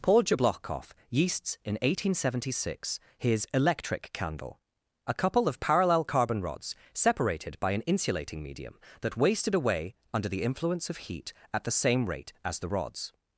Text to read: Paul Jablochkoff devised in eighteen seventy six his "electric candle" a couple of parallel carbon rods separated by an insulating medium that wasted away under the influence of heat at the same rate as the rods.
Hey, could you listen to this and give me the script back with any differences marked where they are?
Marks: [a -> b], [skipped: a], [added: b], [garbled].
Paul Jablochkoff [devised -> yeasts] in eighteen seventy six his "electric candle" a couple of parallel carbon rods separated by an insulating medium that wasted away under the influence of heat at the same rate as the rods.